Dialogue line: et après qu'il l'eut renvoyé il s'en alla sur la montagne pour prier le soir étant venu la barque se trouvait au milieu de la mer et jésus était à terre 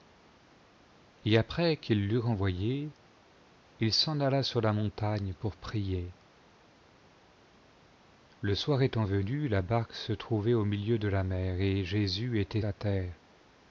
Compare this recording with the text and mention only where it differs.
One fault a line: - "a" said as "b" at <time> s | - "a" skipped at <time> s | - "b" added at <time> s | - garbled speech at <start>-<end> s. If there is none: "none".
none